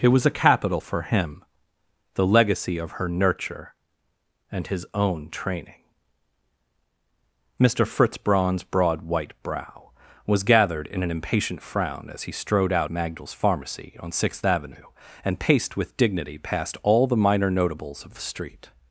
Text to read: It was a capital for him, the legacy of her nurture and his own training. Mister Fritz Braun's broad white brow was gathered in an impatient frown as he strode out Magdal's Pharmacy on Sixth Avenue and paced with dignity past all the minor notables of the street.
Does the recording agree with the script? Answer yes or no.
yes